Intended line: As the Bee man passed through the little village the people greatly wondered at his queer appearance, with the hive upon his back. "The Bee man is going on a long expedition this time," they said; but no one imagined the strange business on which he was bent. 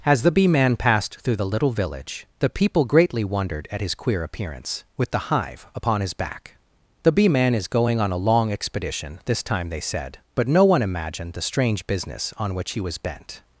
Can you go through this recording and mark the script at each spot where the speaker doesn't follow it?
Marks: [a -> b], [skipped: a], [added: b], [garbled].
As the Bee man passed through the little village the people greatly wondered at his queer appearance, with the hive upon his back. "The Bee man is going on a long expedition this time," they said; but no one imagined the strange business on which he was bent.